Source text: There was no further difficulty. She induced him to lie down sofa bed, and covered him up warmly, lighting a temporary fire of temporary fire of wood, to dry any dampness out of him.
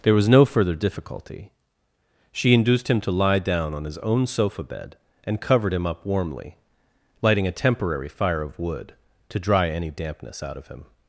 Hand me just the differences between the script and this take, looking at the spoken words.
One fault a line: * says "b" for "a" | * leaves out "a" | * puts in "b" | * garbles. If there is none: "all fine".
* puts in "on his own"
* leaves out "temporary fire of"